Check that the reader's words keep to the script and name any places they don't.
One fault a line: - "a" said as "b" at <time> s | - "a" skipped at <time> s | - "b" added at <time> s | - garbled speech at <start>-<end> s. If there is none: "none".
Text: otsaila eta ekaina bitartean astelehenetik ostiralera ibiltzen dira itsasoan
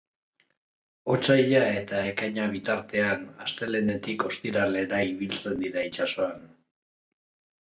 none